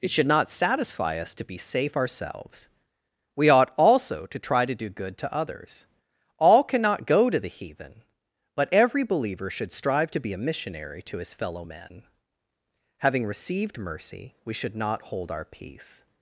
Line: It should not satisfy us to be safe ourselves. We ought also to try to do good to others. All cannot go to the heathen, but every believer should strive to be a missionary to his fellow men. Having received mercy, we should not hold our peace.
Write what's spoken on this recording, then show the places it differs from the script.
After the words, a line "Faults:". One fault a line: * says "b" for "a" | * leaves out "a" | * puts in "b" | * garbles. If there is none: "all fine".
It should not satisfy us to be safe ourselves. We ought also to try to do good to others. All cannot go to the heathen, but every believer should strive to be a missionary to his fellow men. Having received mercy, we should not hold our peace.
Faults:
all fine